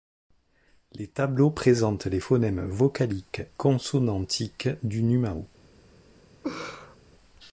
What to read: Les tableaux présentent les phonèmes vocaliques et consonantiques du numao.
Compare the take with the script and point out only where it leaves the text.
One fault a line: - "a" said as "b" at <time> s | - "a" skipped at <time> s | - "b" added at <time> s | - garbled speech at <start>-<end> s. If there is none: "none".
- "et" skipped at 3.4 s